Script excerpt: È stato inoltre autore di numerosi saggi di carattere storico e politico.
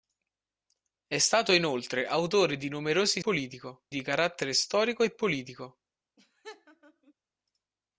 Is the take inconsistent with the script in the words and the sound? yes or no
yes